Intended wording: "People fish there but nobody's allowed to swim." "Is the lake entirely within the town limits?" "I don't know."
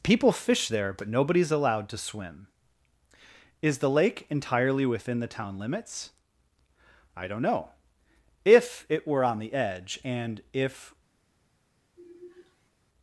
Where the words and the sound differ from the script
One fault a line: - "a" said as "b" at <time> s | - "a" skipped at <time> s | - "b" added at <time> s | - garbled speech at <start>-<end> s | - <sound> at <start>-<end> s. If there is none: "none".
- "If it were on the edge and if" added at 8.4 s
- sigh at 12.0-12.7 s